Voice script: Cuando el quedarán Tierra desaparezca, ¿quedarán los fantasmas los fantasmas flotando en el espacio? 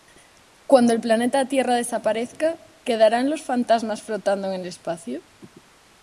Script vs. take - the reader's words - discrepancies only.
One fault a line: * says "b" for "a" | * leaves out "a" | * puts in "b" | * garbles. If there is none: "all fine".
* says "planeta" for "quedarán"
* leaves out "los fantasmas"